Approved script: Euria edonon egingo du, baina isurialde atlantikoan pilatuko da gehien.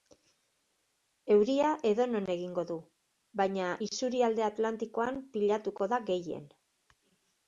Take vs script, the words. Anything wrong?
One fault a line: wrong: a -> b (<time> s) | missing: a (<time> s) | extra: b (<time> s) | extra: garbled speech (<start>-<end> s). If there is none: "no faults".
no faults